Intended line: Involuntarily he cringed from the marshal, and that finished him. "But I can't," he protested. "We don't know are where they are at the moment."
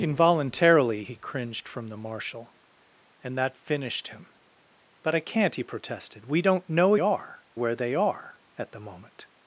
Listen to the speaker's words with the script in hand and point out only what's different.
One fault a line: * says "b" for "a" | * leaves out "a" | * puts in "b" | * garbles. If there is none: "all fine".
all fine